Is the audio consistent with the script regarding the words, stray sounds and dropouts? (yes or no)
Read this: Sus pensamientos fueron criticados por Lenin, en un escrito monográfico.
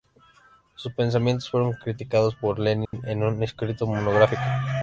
no